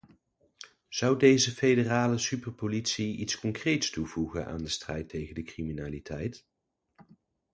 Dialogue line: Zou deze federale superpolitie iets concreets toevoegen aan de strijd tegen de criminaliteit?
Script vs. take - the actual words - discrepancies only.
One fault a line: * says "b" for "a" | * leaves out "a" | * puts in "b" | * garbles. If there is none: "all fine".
all fine